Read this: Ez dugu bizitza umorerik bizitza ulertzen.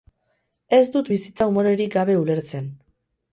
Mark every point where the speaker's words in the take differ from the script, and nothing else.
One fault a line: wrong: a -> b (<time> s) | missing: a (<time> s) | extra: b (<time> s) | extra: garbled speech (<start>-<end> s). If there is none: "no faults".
wrong: dugu -> dut (0.9 s)
wrong: bizitza -> gabe (2.0 s)